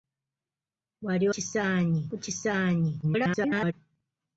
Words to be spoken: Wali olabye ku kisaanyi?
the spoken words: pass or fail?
fail